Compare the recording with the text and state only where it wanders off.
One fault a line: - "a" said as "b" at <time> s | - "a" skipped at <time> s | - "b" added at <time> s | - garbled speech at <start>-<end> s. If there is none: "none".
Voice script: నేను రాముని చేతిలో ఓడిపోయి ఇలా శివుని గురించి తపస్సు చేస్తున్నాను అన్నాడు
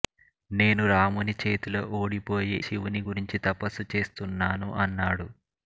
- "ఇలా" skipped at 2.6 s